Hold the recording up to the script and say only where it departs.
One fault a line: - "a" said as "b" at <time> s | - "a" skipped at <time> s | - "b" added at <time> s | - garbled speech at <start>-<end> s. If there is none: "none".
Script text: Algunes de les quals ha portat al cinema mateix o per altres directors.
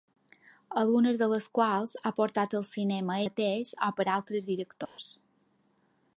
none